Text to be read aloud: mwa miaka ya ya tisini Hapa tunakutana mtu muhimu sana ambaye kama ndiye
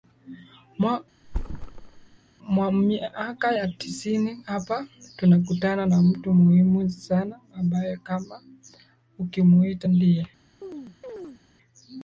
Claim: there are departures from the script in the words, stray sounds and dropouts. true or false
true